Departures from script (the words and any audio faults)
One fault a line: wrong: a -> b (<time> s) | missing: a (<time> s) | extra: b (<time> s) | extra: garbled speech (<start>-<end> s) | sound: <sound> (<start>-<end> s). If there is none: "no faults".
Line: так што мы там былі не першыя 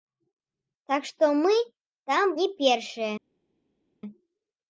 missing: былі (2.3 s)